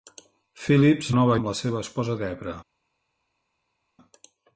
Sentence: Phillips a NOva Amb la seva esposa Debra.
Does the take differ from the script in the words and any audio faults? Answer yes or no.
no